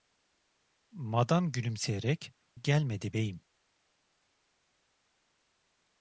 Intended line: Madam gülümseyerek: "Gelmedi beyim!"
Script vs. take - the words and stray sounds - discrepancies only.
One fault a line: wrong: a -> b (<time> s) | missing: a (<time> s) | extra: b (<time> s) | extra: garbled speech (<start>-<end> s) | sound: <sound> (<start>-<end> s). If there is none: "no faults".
no faults